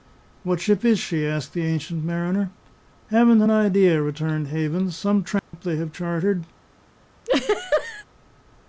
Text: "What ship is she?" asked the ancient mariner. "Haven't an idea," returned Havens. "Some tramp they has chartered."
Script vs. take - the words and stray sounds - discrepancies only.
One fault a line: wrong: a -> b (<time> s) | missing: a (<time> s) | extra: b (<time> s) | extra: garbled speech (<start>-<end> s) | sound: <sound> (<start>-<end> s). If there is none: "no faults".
sound: dropout (5.4-5.5 s)
wrong: has -> have (5.7 s)
sound: laugh (7.2-8.0 s)